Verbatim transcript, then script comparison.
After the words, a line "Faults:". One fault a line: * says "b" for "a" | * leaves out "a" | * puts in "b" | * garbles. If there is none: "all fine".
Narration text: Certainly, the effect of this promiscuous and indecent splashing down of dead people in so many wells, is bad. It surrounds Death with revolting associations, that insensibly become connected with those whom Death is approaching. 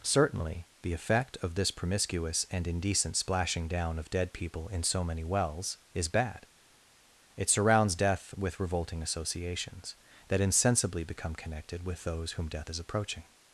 Certainly, the effect of this promiscuous and indecent splashing down of dead people in so many wells, is bad. It surrounds Death with revolting associations, that insensibly become connected with those whom Death is approaching.
Faults:
all fine